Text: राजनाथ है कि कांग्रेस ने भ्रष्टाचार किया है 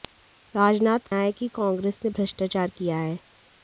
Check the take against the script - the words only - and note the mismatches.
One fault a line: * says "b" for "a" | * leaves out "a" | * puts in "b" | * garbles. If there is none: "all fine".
all fine